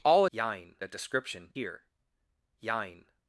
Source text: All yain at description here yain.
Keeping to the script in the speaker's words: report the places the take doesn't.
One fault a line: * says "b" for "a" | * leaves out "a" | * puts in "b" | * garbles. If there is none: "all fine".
all fine